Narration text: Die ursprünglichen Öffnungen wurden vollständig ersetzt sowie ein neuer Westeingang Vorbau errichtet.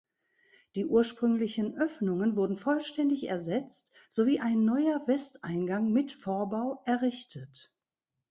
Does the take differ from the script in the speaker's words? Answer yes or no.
yes